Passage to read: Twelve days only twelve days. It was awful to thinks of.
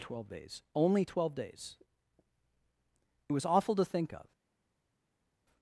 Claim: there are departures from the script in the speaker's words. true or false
true